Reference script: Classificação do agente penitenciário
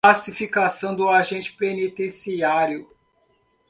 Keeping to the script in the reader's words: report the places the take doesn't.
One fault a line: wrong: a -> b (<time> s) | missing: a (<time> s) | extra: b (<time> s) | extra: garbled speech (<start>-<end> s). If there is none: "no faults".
no faults